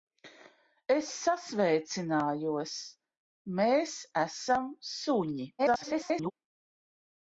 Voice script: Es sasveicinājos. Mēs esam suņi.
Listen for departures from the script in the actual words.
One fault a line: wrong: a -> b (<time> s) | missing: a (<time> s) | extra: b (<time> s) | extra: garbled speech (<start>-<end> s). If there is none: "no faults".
extra: garbled speech (5.6-6.3 s)